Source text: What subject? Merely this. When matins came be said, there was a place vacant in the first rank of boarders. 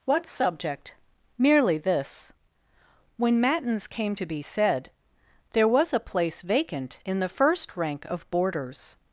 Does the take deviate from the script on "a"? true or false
false